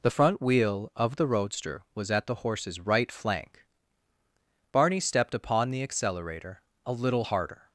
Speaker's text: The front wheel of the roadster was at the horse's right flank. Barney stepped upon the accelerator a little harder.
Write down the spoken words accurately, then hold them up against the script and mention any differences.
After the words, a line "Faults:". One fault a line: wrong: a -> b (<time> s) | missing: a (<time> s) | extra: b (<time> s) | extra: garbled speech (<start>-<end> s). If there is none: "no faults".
The front wheel of the roadster was at the horse's right flank. Barney stepped upon the accelerator a little harder.
Faults:
no faults